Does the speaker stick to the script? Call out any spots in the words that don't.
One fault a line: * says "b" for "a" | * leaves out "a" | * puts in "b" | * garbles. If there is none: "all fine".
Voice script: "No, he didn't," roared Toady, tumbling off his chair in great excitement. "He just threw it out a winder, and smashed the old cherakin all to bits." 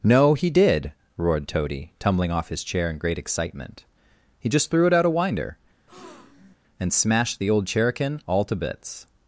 * says "did" for "didn't"